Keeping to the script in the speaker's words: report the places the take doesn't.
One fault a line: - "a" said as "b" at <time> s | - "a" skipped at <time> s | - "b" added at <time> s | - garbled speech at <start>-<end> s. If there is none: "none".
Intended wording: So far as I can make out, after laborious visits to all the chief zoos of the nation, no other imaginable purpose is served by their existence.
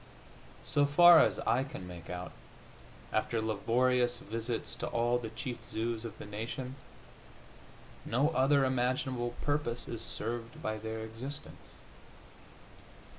none